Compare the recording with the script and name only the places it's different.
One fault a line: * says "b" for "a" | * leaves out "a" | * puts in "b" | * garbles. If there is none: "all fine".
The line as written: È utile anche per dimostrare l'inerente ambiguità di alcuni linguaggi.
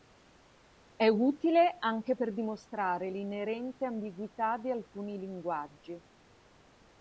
all fine